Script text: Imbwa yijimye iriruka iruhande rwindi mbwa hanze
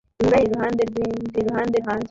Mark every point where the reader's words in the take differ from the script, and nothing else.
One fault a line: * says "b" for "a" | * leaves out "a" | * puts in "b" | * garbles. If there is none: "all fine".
* leaves out "yijimye iriruka"
* says "iruhande" for "mbwa"